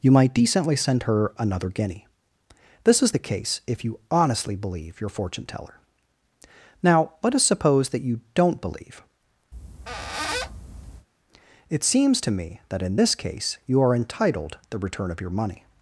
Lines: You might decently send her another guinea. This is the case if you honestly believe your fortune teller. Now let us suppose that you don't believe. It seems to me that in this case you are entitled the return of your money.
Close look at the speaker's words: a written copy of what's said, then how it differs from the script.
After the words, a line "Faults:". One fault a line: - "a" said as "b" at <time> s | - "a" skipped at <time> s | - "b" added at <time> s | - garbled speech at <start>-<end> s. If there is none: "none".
You might decently send her another guinea. This is the case if you honestly believe your fortune teller. Now let us suppose that you don't believe. It seems to me that in this case you are entitled the return of your money.
Faults:
none